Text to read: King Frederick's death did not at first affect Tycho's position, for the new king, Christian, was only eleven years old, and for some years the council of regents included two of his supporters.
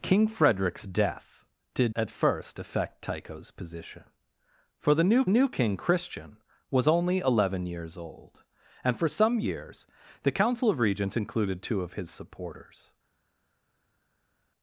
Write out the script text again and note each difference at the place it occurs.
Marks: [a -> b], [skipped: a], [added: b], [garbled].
King Frederick's death did [skipped: not] at first affect Tycho's position, for the new [added: new] king, Christian, was only eleven years old, and for some years the council of regents included two of his supporters.